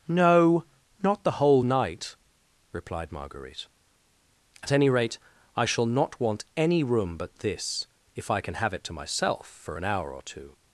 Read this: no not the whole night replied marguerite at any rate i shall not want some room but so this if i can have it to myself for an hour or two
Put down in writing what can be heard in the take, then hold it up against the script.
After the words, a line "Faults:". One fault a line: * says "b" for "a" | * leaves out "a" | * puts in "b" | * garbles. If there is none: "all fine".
no not the whole night replied marguerite at any rate i shall not want any room but this if i can have it to myself for an hour or two
Faults:
* says "any" for "some"
* leaves out "so"